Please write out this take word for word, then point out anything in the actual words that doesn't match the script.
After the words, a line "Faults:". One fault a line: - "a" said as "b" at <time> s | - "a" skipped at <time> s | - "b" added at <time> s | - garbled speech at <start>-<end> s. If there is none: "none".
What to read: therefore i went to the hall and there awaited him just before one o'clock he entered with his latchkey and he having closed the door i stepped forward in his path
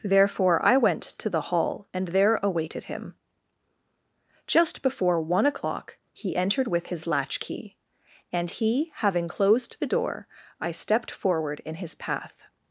therefore i went to the hall and there awaited him just before one o'clock he entered with his latchkey and he having closed the door i stepped forward in his path
Faults:
none